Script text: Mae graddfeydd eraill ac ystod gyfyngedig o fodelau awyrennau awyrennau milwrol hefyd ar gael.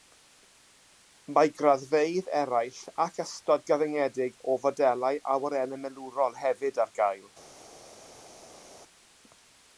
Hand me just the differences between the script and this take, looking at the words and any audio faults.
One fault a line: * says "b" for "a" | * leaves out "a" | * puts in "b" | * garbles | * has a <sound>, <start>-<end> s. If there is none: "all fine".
* leaves out "awyrennau"